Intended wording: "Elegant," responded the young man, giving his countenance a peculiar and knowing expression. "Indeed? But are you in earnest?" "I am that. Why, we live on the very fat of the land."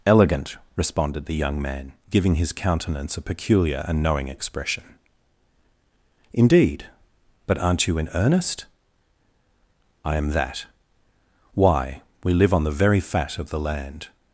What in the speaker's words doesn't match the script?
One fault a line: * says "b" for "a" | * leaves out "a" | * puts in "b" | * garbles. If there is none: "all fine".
* says "aren't" for "are"